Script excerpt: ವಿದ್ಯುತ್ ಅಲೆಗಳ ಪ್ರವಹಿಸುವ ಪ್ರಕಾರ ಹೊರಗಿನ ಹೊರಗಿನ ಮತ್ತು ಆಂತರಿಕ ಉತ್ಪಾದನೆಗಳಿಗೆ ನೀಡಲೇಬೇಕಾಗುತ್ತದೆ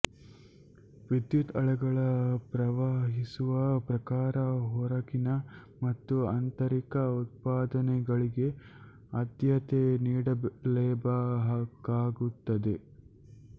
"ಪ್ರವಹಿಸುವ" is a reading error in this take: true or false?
false